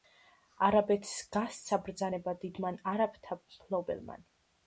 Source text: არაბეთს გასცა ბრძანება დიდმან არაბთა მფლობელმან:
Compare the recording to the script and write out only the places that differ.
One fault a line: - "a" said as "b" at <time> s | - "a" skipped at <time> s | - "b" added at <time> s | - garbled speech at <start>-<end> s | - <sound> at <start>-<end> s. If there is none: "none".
none